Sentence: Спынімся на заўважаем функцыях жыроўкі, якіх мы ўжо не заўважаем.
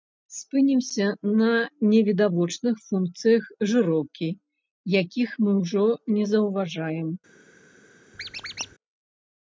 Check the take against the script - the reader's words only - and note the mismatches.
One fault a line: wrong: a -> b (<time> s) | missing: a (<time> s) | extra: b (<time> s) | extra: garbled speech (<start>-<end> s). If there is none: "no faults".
wrong: заўважаем -> невідавочных (1.9 s)